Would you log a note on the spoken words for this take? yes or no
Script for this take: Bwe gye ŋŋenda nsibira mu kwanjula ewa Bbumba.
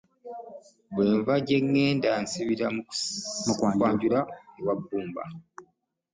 yes